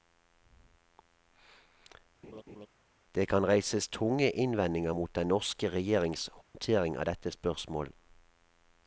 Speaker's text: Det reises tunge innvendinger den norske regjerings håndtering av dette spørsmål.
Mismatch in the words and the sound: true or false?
true